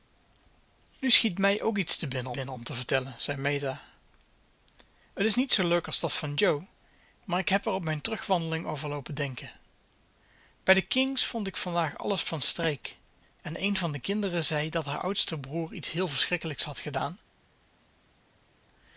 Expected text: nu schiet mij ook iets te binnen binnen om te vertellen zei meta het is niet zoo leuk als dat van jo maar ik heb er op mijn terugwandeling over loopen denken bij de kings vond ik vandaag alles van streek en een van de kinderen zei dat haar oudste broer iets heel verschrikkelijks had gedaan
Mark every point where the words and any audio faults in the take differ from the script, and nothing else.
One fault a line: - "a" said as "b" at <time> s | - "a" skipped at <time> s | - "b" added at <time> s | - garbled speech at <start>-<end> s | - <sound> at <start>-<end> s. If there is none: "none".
none